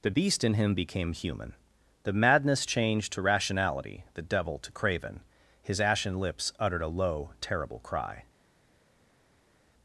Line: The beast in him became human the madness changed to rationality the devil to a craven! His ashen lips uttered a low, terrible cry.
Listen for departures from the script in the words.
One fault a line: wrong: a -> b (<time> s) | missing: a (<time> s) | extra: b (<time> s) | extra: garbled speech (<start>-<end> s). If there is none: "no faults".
missing: a (4.7 s)